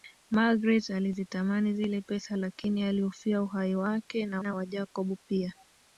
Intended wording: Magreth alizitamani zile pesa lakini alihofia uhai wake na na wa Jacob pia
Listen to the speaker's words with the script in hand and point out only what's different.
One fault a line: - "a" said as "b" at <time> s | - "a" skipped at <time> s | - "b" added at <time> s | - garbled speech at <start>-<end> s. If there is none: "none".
none